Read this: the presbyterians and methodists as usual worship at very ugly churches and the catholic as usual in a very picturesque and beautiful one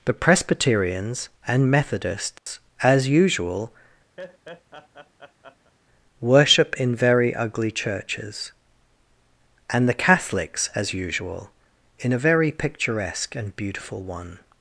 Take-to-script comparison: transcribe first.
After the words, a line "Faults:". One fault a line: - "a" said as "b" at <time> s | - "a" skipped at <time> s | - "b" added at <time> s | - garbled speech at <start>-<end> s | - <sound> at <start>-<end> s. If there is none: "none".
the presbyterians and methodists as usual worship in very ugly churches and the catholics as usual in a very picturesque and beautiful one
Faults:
- dropout at 2.4-2.5 s
- laugh at 4.2-5.7 s
- "at" said as "in" at 6.8 s
- "catholic" said as "catholics" at 10.0 s